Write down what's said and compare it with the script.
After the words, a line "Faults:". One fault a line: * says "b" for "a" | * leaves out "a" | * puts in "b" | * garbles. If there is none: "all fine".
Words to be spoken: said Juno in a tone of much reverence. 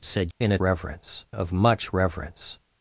said In a reverence of much reverence.
Faults:
* leaves out "Juno"
* says "reverence" for "tone"